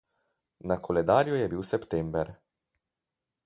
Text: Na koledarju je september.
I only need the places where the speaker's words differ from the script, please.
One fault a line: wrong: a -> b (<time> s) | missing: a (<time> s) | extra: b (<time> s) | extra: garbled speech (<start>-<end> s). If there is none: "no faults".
extra: bil (1.5 s)